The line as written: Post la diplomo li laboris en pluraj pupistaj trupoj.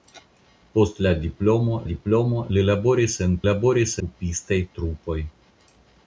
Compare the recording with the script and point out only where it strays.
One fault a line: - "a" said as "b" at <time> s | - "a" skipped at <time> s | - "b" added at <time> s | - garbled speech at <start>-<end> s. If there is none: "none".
- "diplomo" added at 1.9 s
- "pluraj" said as "laboris" at 3.5 s